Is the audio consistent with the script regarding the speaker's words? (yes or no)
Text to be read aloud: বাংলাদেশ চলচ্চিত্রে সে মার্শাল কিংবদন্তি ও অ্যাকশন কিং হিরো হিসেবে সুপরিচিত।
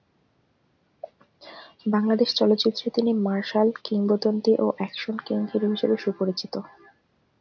no